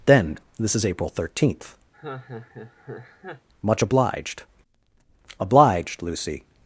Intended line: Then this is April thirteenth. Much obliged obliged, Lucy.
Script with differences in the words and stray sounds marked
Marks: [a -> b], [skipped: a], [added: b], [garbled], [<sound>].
Then this is April thirteenth. [laugh] Much obliged obliged, Lucy.